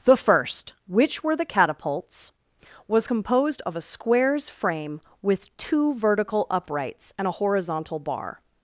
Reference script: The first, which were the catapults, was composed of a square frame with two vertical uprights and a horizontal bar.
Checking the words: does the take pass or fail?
fail